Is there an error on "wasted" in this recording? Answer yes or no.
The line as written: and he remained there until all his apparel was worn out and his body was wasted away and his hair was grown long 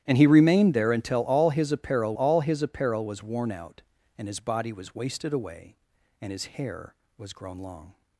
no